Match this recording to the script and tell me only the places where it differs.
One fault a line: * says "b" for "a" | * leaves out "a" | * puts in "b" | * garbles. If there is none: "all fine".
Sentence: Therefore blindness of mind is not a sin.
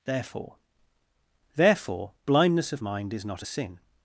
* puts in "therefore"